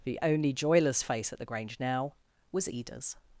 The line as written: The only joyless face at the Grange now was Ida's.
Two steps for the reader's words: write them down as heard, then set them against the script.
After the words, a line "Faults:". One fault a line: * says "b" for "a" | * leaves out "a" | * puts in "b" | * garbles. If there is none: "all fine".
The only joyless face at the Grange now was Ida's.
Faults:
all fine